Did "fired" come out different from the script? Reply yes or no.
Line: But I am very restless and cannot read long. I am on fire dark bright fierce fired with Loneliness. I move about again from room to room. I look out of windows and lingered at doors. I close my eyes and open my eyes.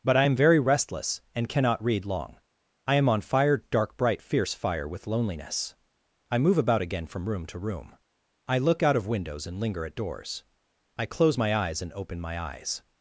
yes